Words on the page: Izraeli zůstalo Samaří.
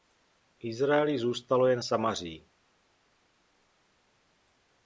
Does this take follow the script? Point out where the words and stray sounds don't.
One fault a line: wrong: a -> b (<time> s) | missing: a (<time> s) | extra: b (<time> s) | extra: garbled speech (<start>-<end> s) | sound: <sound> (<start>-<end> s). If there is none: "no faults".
extra: jen (1.7 s)